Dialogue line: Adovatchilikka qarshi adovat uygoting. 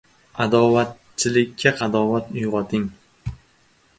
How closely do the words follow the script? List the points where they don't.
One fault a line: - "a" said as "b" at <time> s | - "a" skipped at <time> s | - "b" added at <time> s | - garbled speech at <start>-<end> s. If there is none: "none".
- "qarshi" skipped at 1.8 s